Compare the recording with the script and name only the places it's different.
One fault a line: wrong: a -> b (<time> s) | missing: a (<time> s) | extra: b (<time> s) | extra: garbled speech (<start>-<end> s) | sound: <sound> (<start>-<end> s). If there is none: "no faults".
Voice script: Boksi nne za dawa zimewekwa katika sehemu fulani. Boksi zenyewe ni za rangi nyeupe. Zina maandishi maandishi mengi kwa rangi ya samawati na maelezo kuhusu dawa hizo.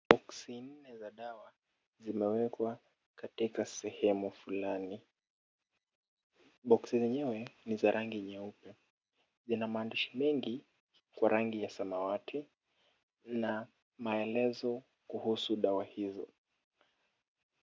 missing: maandishi (10.2 s)